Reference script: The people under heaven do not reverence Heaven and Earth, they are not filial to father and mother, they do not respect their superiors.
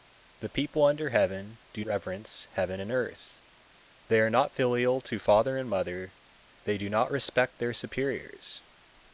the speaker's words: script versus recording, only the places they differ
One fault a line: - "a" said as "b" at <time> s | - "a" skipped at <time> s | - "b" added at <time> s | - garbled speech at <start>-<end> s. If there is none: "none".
- "not" skipped at 1.9 s